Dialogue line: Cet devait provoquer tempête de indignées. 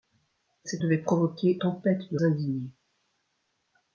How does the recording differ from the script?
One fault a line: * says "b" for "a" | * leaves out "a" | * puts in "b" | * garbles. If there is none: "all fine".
all fine